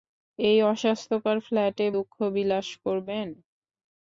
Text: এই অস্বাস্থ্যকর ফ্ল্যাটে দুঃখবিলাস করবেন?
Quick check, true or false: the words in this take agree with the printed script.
true